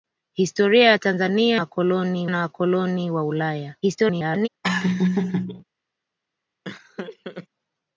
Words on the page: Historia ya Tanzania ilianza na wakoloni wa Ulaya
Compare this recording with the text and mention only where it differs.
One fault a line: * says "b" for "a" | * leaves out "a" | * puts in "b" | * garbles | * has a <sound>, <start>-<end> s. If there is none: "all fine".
* says "wakoloni" for "ilianza"
* garbles
* has a laugh, 4.6-5.6 s
* has a laugh, 6.6-7.5 s